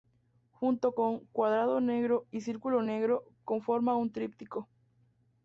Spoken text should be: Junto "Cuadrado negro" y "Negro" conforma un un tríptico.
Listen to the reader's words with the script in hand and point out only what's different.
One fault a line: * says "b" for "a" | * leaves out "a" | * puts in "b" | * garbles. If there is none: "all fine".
* puts in "con"
* puts in "Círculo"
* leaves out "un"